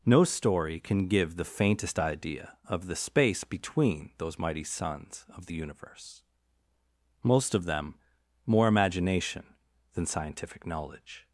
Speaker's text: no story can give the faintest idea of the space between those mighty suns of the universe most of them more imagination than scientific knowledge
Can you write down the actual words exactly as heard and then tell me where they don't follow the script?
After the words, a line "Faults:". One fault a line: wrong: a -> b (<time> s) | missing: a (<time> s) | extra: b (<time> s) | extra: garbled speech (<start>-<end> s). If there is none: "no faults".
no story can give the faintest idea of the space between those mighty suns of the universe most of them more imagination than scientific knowledge
Faults:
no faults